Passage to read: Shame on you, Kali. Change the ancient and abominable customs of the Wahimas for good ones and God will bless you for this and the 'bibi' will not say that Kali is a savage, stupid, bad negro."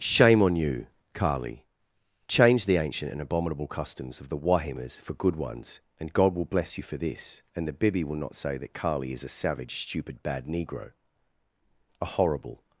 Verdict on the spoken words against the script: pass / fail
fail